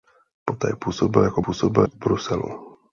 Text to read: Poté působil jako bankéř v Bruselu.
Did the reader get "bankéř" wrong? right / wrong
wrong